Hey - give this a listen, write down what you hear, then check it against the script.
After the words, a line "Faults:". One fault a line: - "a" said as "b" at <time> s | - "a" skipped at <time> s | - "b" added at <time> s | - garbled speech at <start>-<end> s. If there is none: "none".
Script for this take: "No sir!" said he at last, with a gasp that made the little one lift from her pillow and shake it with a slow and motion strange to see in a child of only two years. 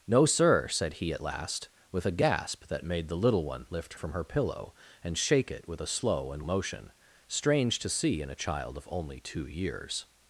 "No sir!" said he at last, with a gasp that made the little one lift from her pillow and shake it with a slow and motion strange to see in a child of only two years.
Faults:
none